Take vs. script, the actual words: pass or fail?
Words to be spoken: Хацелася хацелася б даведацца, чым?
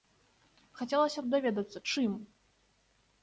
fail